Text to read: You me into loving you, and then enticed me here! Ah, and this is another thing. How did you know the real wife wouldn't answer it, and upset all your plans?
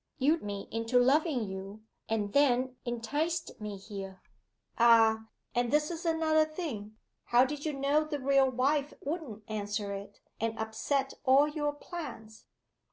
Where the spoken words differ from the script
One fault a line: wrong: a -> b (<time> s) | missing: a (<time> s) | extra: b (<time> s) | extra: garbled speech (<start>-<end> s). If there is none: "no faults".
no faults